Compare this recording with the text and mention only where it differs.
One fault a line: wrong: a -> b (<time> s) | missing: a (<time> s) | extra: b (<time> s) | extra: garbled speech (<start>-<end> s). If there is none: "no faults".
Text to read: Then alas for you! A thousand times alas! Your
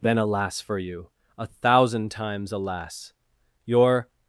no faults